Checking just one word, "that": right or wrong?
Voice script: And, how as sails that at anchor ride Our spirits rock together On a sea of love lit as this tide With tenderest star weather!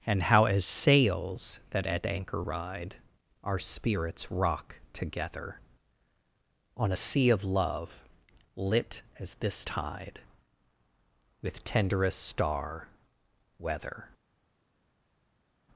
right